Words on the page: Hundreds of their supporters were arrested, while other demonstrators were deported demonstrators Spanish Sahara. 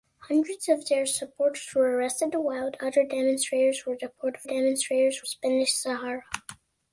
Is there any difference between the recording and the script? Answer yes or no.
no